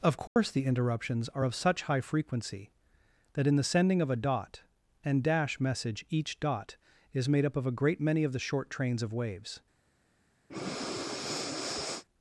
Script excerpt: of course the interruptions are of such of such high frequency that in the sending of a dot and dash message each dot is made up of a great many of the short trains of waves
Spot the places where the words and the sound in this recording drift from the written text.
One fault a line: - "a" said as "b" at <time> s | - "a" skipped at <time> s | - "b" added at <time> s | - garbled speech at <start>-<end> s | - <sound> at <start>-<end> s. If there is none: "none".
- dropout at 0.3-0.4 s
- "of such" skipped at 1.8 s
- breath at 10.5-12.0 s